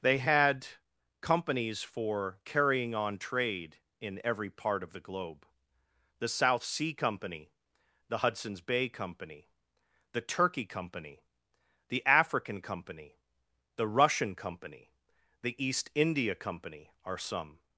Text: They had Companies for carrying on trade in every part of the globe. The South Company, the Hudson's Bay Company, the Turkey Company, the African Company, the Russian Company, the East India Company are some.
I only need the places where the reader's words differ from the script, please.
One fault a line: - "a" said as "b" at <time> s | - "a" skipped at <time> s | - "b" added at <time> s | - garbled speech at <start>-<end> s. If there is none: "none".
- "Sea" added at 6.6 s